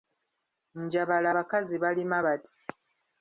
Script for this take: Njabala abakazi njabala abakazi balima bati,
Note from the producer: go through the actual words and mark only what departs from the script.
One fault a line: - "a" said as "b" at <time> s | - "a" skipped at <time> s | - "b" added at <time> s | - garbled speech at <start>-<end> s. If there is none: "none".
- "njabala abakazi" skipped at 1.7 s